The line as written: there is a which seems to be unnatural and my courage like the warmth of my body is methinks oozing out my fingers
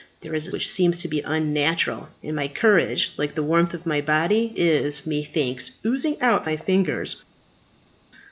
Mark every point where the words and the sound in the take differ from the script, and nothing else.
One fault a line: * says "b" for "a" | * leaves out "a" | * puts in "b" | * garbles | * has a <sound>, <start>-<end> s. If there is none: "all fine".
all fine